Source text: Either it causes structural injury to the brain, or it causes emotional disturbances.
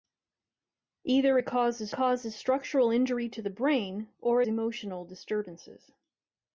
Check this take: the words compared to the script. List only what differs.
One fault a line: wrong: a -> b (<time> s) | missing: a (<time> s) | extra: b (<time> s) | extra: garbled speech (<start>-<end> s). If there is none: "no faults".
extra: causes (1.9 s)
missing: it causes (4.4 s)